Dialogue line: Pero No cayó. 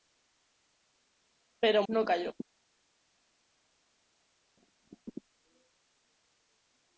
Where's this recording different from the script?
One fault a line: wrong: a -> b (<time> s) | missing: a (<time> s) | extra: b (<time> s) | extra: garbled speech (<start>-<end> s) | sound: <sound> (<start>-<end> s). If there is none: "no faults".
no faults